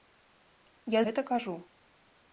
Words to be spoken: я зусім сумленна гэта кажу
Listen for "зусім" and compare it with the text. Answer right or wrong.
wrong